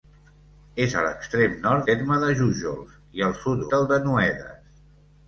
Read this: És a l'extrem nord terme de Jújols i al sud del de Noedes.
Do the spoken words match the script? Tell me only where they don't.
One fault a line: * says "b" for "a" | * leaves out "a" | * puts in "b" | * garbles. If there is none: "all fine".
all fine